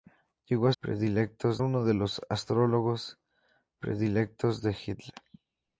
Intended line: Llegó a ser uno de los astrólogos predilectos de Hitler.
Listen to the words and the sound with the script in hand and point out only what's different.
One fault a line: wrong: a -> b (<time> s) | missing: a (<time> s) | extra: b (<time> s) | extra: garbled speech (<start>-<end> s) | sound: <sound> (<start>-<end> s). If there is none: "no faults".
wrong: ser -> predilectos (0.8 s)